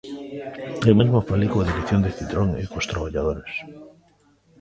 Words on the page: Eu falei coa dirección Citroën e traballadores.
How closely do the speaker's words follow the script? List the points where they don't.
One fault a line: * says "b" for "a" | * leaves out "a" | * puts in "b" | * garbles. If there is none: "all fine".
* puts in "mesmo"
* puts in "de"
* puts in "cos"